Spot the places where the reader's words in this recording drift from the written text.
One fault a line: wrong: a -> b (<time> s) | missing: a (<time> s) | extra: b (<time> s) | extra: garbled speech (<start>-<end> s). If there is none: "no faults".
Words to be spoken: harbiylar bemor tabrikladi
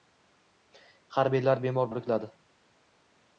no faults